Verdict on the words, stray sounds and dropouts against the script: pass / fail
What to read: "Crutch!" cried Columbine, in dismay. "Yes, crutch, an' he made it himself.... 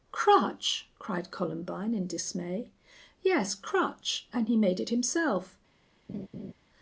fail